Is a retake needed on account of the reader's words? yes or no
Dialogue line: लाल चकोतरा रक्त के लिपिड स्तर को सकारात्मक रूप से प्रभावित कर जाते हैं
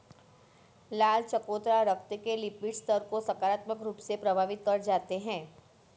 no